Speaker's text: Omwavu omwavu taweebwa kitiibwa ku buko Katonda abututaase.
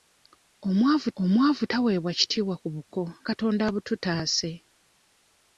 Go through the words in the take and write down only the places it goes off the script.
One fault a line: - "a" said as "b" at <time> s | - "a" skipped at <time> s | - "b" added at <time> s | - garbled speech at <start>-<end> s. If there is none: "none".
none